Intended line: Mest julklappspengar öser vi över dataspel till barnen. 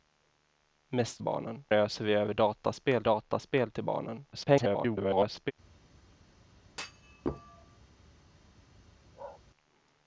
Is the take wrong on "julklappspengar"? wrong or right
wrong